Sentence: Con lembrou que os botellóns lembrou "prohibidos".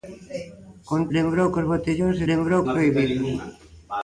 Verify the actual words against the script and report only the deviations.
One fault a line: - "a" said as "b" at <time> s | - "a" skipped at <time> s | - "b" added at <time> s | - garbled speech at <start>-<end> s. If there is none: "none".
none